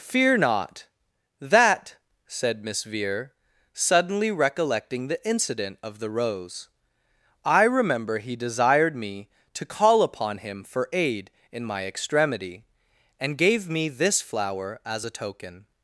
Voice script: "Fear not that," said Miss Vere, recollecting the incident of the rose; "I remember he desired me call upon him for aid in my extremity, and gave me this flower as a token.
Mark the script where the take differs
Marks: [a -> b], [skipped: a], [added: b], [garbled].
"Fear not that," said Miss Vere, [added: suddenly] recollecting the incident of the rose; "I remember he desired me [added: to] call upon him for aid in my extremity, and gave me this flower as a token.